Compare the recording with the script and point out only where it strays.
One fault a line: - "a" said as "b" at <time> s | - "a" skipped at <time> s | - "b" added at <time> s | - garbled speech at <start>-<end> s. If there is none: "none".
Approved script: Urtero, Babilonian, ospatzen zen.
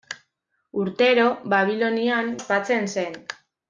none